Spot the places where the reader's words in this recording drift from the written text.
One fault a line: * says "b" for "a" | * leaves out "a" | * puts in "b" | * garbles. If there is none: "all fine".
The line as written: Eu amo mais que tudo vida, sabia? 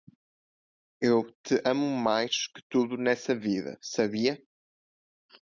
* puts in "te"
* puts in "nessa"